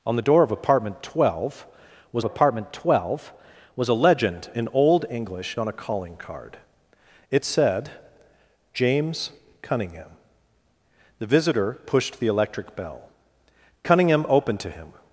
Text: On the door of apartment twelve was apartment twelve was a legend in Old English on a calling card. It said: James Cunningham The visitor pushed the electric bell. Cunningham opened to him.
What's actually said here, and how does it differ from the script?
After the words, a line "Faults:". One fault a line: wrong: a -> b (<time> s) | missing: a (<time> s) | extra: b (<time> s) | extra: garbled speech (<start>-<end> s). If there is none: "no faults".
On the door of apartment twelve was apartment twelve was a legend in Old English on a calling card. It said: James Cunningham The visitor pushed the electric bell. Cunningham opened to him.
Faults:
no faults